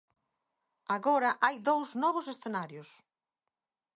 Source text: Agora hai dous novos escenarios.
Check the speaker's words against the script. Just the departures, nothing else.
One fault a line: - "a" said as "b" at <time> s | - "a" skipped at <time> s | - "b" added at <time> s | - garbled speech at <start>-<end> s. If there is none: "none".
none